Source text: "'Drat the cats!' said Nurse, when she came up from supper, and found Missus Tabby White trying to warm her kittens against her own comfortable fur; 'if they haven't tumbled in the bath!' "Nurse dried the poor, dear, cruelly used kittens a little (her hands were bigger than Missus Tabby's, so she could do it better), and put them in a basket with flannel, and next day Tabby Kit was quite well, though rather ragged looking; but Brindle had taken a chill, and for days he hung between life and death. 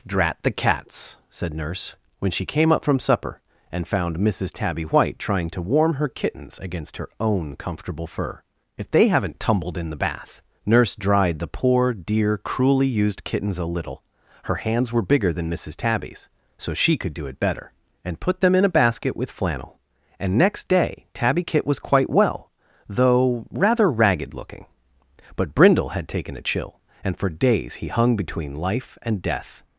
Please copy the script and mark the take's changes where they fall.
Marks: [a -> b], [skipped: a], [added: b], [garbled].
"'Drat the cats!' said Nurse, when she came up from supper, and found Missus Tabby White trying to warm her kittens against her own comfortable fur; 'if they haven't tumbled in the bath!' "Nurse dried the poor, dear, cruelly used kittens a little (her hands were bigger than Missus Tabby's, so she could do it better), and put them in a basket with flannel, and next day Tabby Kit was quite well, though rather ragged looking; but Brindle had taken a chill, and for days he hung between life and death.